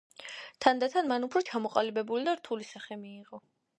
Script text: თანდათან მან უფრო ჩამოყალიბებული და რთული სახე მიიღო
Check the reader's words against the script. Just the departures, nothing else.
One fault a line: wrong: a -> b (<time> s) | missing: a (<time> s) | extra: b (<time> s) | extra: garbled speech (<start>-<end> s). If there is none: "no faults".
no faults